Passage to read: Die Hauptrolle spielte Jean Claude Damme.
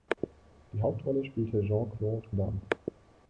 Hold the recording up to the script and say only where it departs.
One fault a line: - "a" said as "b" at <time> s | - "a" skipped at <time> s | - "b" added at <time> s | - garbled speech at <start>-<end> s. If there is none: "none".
none